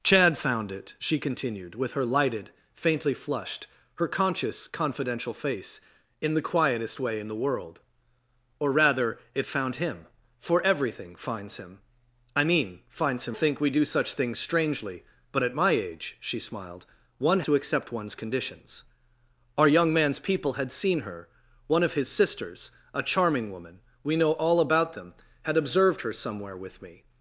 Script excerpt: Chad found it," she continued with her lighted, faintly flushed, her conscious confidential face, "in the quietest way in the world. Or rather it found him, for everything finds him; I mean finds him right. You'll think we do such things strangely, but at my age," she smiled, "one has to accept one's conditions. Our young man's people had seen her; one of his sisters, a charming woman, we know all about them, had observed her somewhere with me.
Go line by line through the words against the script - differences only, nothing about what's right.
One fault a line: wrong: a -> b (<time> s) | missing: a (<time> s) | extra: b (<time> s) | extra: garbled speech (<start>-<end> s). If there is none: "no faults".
missing: right You'll (13.4 s)
missing: has (17.4 s)